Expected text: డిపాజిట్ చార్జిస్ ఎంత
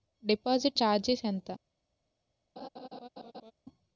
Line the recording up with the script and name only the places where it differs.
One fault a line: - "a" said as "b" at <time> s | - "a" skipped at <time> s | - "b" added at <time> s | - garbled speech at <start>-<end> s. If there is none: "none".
none